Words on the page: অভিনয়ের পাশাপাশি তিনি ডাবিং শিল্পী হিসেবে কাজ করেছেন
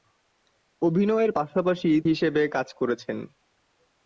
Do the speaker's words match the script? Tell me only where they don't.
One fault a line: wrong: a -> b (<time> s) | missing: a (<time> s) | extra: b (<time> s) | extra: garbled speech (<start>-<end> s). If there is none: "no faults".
missing: তিনি ডাবিং শিল্পী (1.9 s)